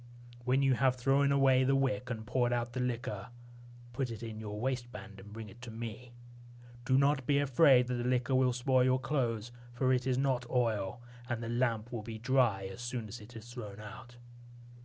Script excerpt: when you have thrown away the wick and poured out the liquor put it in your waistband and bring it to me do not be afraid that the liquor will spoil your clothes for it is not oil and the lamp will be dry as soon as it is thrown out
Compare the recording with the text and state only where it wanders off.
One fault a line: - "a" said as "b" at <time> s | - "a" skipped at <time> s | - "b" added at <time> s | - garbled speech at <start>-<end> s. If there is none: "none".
none